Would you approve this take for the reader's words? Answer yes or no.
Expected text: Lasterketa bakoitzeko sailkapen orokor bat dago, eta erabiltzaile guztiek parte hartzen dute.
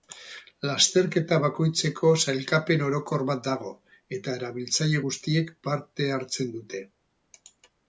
yes